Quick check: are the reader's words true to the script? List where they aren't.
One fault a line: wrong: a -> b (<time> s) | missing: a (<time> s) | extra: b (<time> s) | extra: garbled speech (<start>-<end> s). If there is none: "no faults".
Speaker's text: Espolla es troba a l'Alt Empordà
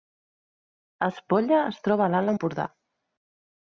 no faults